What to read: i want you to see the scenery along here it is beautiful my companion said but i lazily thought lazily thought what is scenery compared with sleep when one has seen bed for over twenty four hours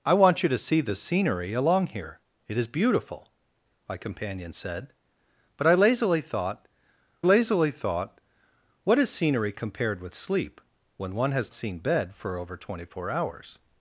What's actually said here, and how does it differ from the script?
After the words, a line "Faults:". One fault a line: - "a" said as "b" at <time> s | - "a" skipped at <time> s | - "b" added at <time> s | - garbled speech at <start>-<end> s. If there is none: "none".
i want you to see the scenery along here it is beautiful my companion said but i lazily thought lazily thought what is scenery compared with sleep when one has seen bed for over twenty four hours
Faults:
none